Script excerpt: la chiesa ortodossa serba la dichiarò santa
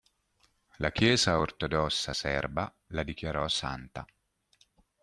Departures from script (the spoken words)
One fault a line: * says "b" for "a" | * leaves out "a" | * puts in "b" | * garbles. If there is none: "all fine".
all fine